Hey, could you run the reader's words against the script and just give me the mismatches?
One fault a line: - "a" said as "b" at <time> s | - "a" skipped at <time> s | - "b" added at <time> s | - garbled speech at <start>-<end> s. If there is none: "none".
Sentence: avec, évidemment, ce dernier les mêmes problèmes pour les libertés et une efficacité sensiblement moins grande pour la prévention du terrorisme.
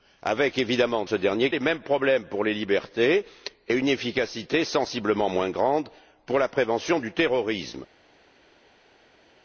none